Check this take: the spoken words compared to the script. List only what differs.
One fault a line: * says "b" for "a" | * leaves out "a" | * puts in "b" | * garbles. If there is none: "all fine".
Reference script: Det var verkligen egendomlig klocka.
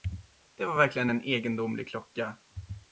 * puts in "en"